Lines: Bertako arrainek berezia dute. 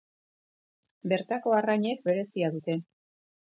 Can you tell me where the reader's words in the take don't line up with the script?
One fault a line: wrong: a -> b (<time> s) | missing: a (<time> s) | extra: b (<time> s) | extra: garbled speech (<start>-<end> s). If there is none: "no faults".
no faults